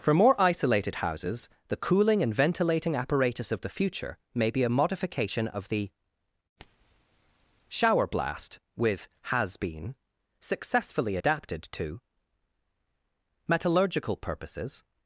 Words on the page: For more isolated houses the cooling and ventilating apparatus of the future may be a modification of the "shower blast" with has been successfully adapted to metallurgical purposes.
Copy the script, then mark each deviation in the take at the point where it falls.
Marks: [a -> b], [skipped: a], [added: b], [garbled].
For more isolated houses the cooling and ventilating apparatus of the future may be a modification of the "shower blast" with has been successfully adapted to metallurgical purposes.